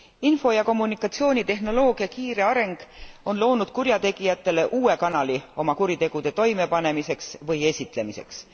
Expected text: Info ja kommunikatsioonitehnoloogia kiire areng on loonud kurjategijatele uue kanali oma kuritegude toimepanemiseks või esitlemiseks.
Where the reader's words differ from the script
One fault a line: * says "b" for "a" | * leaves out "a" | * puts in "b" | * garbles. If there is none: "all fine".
all fine